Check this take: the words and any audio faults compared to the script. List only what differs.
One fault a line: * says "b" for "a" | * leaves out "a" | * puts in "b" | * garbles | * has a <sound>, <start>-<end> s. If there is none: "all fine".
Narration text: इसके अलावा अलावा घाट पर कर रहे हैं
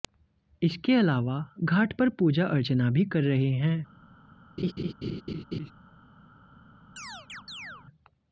* leaves out "अलावा"
* puts in "पूजा अर्चना भी"
* has a laugh, 4.6-5.7 s
* has a chirp, 7.0-7.9 s